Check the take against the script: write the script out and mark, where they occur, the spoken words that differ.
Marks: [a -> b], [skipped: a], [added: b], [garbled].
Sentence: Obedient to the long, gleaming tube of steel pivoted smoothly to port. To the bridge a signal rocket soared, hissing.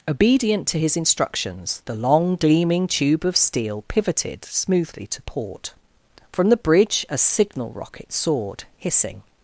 Obedient to [added: his instructions] the long, gleaming tube of steel pivoted smoothly to port. [To -> From] the bridge a signal rocket soared, hissing.